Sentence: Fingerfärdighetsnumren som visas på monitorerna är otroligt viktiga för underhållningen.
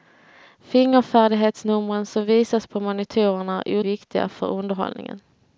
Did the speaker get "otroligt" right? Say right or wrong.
wrong